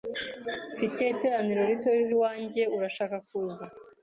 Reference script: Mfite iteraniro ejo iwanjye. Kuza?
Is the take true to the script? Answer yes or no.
no